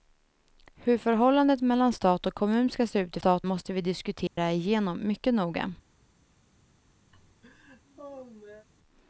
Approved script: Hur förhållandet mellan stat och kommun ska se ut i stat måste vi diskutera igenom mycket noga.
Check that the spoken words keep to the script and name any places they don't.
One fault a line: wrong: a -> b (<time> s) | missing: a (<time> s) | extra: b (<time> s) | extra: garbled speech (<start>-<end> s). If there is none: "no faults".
no faults